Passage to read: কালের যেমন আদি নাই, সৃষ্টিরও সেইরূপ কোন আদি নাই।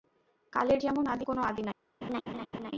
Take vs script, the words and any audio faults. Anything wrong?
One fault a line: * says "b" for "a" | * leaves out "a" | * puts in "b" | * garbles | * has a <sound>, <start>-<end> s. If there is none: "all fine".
* leaves out "নাই সৃষ্টিরও সেইরূপ"
* has a laugh, 2.0-2.7 s